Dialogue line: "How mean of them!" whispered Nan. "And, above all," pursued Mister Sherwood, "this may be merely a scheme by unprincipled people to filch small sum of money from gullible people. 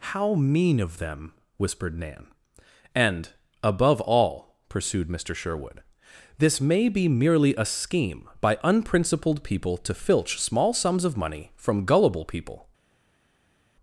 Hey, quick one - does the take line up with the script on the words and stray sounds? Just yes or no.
no